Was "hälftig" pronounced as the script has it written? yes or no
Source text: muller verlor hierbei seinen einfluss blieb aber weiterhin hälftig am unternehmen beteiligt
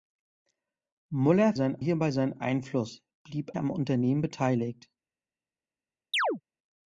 no